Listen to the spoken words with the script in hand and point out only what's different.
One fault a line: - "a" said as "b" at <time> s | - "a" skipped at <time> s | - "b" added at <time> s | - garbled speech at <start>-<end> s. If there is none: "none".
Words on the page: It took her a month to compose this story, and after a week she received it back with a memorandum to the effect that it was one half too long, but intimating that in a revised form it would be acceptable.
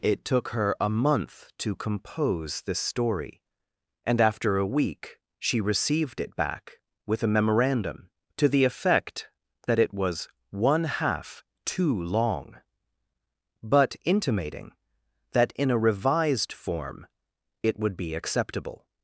none